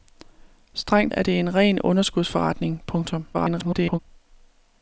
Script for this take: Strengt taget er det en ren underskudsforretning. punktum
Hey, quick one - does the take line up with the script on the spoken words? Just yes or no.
no